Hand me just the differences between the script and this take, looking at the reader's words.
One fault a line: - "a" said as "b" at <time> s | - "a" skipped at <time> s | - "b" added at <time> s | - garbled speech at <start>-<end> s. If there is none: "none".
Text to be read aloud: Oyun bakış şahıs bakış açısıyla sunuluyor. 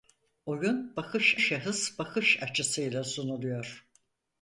none